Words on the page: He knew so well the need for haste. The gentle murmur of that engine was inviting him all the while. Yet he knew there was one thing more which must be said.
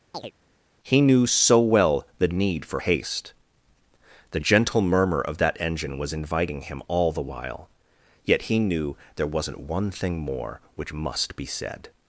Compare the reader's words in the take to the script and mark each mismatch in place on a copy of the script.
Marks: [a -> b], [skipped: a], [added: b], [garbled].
He knew so well the need for haste. The gentle murmur of that engine was inviting him all the while. Yet he knew there [was -> wasn't] one thing more which must be said.